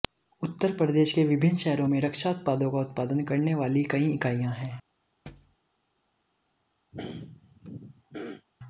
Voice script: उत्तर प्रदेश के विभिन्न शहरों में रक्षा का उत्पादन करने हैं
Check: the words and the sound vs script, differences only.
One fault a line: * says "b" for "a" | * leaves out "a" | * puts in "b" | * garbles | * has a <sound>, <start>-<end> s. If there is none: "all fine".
* puts in "उत्पादों"
* puts in "वाली कई इकाइयां"
* has a thud, 5.3-5.6 s
* has a throat clearing, 6.9-8.5 s